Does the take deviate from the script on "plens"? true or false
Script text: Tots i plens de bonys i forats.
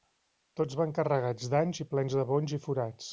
false